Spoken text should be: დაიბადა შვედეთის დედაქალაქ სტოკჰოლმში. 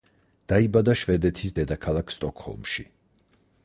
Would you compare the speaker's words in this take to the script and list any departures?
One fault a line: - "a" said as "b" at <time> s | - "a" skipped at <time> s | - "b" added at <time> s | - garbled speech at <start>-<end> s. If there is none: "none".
none